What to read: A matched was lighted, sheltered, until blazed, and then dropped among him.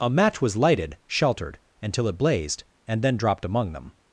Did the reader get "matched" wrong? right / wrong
wrong